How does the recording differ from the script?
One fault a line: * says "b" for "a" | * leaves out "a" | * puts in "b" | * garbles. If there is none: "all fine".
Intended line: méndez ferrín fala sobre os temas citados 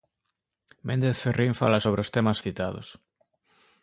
all fine